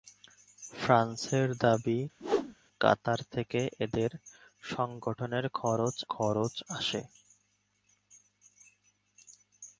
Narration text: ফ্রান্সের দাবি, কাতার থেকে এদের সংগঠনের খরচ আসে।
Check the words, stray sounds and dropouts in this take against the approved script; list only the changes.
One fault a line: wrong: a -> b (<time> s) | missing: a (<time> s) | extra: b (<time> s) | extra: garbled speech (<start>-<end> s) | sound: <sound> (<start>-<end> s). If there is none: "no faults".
sound: whoosh (2.2-2.5 s)
extra: খরচ (6.0 s)